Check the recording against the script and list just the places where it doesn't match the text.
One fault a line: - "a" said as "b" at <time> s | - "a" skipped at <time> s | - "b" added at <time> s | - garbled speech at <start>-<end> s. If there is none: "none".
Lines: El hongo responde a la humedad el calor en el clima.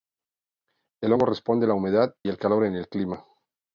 none